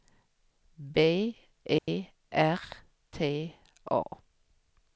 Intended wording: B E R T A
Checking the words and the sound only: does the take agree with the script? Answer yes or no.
no